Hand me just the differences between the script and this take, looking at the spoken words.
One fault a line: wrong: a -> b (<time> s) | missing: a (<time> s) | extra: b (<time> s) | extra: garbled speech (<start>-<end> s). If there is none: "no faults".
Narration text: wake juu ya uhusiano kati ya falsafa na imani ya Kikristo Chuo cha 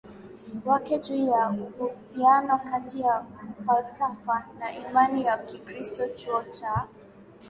no faults